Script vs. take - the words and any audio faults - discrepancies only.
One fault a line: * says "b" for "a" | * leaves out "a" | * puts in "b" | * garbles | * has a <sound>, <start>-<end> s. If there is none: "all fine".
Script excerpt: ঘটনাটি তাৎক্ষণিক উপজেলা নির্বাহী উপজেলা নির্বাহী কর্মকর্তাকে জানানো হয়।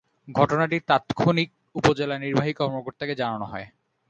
* leaves out "উপজেলা নির্বাহী"